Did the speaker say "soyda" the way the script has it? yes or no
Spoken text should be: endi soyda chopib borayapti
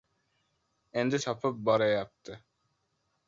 no